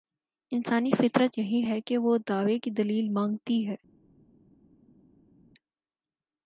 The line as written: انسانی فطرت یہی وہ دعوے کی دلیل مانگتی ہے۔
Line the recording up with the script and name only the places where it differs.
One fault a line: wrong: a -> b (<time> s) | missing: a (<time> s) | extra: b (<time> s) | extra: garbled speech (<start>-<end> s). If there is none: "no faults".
extra: ہے کہ (1.6 s)